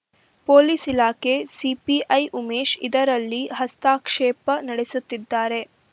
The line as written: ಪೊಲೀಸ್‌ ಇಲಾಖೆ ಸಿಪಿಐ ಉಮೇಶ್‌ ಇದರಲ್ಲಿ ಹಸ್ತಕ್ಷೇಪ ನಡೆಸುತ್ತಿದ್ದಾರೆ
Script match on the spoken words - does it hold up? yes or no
yes